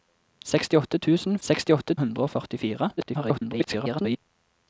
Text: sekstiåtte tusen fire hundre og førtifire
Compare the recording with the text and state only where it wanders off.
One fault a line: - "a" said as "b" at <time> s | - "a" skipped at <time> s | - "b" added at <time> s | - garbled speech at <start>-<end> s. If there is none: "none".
- "fire" said as "sekstiåtte" at 1.5 s
- garbled speech at 3.0-4.2 s